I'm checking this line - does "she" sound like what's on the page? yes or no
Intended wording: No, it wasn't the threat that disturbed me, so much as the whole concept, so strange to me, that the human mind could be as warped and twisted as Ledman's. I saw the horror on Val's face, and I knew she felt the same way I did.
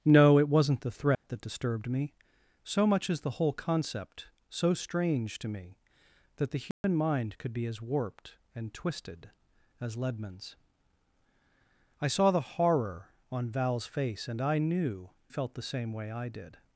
no